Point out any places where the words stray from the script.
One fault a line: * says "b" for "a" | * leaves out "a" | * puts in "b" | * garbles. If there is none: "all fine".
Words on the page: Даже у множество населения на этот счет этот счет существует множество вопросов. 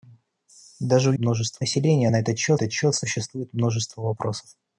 all fine